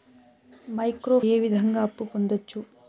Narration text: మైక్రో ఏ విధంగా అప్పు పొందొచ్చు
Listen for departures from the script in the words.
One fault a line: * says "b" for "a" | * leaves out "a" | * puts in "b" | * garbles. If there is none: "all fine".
all fine